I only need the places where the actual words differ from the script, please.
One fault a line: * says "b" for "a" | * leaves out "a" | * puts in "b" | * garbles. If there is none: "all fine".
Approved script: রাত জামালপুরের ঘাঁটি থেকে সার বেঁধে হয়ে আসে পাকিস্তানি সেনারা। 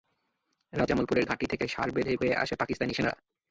all fine